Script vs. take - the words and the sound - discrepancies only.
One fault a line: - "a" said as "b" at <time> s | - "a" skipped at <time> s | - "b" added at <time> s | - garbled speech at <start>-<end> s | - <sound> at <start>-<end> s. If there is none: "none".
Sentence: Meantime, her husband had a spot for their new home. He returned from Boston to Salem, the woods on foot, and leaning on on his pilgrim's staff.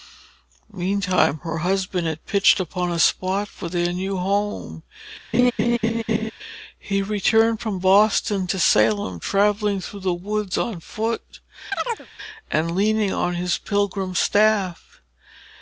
- "pitched upon" added at 2.2 s
- laugh at 5.3-6.3 s
- "travelling through" added at 9.2 s
- chirp at 11.7-12.1 s
- "on" skipped at 13.3 s